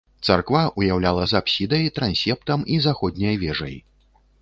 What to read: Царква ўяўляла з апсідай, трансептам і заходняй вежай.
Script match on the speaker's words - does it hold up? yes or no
yes